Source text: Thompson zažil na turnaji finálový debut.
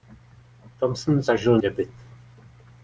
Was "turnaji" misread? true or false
true